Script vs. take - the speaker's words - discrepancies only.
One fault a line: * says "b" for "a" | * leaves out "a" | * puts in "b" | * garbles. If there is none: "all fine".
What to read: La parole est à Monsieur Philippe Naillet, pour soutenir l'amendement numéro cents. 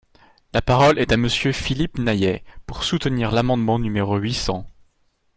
* puts in "huit"